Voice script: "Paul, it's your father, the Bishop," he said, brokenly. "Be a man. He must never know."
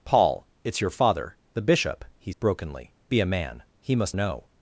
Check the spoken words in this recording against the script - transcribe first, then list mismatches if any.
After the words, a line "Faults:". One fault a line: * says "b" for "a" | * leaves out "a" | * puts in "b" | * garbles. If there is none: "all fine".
"Paul, it's your father, the Bishop," he brokenly. "Be a man. He must know."
Faults:
* leaves out "said"
* leaves out "never"